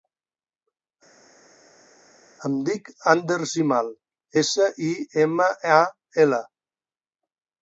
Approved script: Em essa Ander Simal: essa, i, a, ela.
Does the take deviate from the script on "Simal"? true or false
false